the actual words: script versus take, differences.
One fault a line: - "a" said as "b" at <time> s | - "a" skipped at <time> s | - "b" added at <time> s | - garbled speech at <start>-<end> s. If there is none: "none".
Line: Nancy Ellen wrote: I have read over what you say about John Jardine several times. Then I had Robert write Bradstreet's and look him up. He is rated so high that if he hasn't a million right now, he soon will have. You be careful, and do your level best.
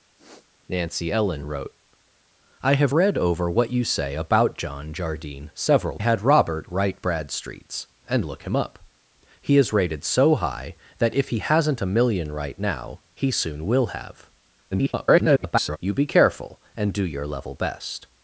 - "times Then I" skipped at 6.0 s
- garbled speech at 14.7-15.8 s